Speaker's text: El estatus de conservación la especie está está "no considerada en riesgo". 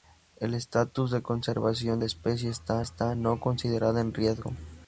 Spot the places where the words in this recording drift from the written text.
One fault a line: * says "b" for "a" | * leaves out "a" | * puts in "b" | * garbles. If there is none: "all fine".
all fine